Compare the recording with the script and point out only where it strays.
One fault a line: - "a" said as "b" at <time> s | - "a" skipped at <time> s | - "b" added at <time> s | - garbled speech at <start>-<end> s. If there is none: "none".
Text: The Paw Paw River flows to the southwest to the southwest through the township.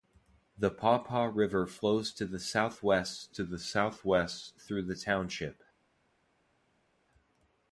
none